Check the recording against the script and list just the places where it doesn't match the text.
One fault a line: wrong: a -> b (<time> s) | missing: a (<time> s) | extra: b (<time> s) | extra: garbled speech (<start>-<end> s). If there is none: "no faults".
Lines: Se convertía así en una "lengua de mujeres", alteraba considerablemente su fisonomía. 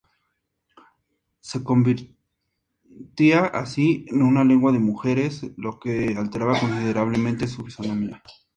extra: lo que (5.6 s)